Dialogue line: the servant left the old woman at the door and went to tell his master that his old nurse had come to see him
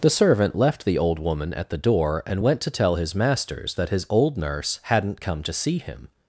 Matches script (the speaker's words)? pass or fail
fail